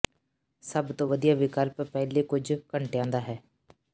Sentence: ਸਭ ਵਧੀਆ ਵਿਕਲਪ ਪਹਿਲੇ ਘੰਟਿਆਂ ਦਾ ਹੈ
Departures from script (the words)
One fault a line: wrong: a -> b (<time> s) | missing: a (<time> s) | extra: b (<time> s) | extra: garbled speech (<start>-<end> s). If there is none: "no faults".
extra: ਤੋਂ (0.9 s)
extra: ਕੁਝ (2.2 s)